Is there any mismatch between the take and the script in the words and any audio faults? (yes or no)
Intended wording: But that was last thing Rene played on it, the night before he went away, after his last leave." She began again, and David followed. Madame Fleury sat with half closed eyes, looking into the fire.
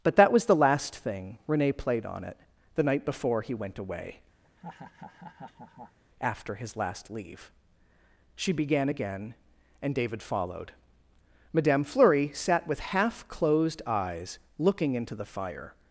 yes